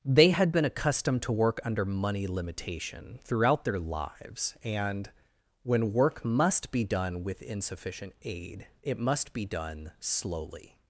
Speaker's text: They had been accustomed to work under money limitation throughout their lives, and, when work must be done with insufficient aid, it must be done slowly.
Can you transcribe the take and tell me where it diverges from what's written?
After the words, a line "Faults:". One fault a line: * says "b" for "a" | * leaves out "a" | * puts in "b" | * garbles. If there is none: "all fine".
They had been accustomed to work under money limitation throughout their lives, and, when work must be done with insufficient aid, it must be done slowly.
Faults:
all fine